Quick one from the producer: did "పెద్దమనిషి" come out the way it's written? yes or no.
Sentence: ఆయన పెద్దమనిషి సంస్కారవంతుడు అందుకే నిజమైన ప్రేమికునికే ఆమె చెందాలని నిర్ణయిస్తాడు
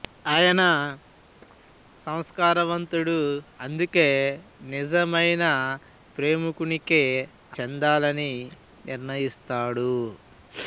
no